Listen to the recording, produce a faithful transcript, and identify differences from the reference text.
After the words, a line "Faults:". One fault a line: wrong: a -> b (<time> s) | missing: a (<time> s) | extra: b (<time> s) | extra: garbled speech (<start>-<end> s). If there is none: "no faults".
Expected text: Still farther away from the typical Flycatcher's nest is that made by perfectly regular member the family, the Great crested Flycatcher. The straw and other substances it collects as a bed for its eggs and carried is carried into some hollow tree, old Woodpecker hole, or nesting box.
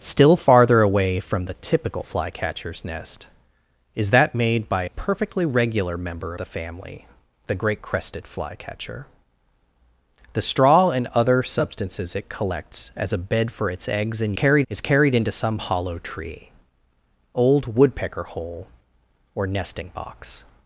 Still farther away from the typical Flycatcher's nest is that made by perfectly regular member the family, the Great crested Flycatcher. The straw and other substances it collects as a bed for its eggs and carried is carried into some hollow tree, old Woodpecker hole, or nesting box.
Faults:
no faults